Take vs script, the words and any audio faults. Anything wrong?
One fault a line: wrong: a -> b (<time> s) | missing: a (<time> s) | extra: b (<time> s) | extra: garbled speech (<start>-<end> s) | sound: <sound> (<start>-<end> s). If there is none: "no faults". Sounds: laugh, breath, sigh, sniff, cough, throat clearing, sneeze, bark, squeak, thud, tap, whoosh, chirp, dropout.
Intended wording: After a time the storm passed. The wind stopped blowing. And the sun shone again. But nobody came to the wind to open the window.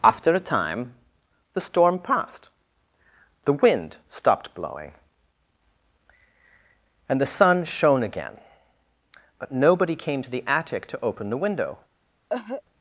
wrong: wind -> attic (10.5 s)
sound: cough (12.3-12.6 s)